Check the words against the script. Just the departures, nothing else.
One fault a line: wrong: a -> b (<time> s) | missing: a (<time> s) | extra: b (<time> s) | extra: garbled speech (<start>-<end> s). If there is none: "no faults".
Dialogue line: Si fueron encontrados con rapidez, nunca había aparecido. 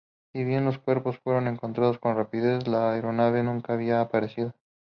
extra: bien los cuerpos (0.4 s)
extra: la aeronave (2.7 s)